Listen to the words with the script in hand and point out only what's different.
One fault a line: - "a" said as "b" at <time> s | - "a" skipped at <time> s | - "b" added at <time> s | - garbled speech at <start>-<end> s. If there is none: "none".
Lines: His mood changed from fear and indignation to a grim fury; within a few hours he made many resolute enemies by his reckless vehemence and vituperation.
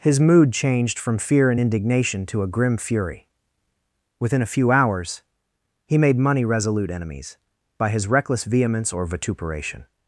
- "many" said as "money" at 6.2 s
- "and" said as "or" at 8.9 s